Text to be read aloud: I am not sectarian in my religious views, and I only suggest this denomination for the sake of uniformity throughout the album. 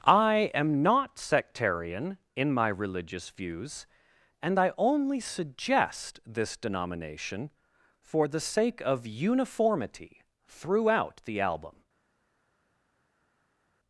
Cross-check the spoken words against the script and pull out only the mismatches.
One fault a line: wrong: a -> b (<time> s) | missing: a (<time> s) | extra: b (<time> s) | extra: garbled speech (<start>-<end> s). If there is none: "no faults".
no faults